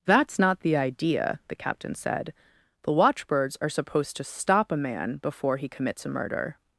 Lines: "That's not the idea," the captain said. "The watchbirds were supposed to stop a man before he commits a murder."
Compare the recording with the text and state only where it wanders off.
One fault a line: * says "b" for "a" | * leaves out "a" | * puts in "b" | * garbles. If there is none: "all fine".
* says "are" for "were"